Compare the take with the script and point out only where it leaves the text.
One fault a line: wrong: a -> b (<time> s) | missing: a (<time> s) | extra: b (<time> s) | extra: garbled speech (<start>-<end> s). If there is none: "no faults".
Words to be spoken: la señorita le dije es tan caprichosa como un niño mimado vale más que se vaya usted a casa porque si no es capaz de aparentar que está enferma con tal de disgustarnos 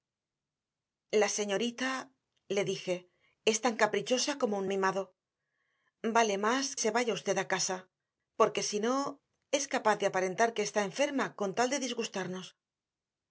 missing: niño (4.7 s)
missing: que (6.6 s)